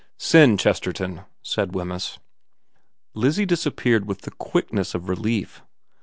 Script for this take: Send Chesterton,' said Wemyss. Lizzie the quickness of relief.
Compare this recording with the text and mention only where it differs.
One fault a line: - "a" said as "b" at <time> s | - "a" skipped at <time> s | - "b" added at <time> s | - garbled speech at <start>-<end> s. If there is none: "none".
- "disappeared with" added at 3.5 s